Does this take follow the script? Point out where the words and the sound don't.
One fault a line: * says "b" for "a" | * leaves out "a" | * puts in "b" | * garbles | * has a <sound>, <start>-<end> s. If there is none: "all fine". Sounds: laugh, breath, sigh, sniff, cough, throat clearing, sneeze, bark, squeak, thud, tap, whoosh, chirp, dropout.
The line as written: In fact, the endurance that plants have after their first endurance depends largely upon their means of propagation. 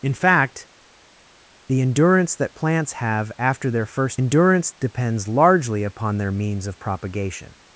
all fine